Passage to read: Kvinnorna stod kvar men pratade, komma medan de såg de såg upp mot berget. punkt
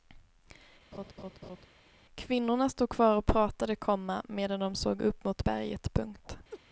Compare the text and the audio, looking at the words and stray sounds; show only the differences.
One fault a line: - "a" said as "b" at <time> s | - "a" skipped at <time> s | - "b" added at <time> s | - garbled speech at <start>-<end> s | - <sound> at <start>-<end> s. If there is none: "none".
- laugh at 0.9-1.7 s
- "men" said as "och" at 3.2 s
- "de såg" skipped at 5.0 s
- laugh at 6.5-6.6 s